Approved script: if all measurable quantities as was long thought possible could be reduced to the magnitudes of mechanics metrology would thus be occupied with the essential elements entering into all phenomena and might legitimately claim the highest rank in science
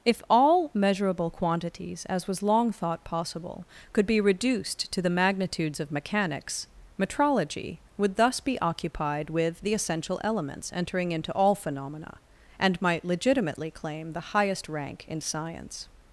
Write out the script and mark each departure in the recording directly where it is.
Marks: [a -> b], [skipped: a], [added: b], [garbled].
if all measurable quantities as was long thought possible could be reduced to the magnitudes of mechanics metrology would thus be occupied with the essential elements entering into all phenomena and might legitimately claim the highest rank in science